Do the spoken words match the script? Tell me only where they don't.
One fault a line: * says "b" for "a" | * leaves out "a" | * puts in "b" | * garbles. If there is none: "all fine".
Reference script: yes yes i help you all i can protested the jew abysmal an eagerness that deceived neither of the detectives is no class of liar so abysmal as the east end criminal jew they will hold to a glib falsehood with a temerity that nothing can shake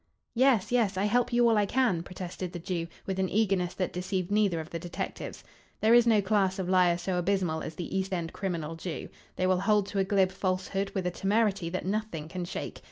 * says "with" for "abysmal"
* puts in "there"